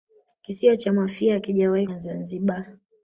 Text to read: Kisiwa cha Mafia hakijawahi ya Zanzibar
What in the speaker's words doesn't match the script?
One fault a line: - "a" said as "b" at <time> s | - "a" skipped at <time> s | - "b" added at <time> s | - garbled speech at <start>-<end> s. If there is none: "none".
none